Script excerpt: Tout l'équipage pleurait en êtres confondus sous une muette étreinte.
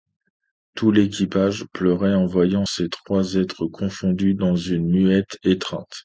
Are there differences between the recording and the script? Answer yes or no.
yes